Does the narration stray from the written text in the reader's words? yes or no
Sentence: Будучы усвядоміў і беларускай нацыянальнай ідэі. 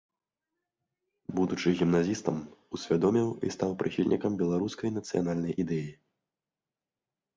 yes